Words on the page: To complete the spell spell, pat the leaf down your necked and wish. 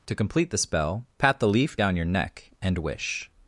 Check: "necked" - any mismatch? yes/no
yes